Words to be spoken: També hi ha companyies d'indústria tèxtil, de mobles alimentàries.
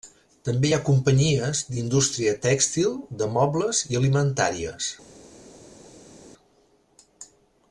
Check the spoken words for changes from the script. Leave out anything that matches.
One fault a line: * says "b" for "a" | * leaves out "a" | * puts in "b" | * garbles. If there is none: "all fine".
* puts in "i"